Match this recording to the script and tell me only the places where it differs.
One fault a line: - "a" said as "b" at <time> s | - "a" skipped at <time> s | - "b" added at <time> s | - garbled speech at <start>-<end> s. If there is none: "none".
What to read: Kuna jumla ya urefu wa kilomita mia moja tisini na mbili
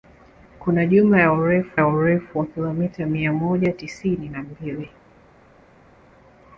- "ya urefu" added at 1.8 s